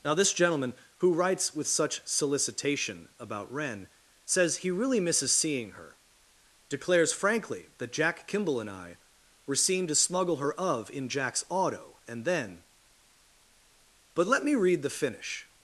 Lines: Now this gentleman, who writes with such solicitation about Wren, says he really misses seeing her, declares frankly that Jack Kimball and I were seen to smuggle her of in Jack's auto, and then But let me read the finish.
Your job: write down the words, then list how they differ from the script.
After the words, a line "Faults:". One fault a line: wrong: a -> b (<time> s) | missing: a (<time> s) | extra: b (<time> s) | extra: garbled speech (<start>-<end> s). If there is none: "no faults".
Now this gentleman, who writes with such solicitation about Wren, says he really misses seeing her, declares frankly that Jack Kimball and I were seen to smuggle her of in Jack's auto, and then But let me read the finish.
Faults:
no faults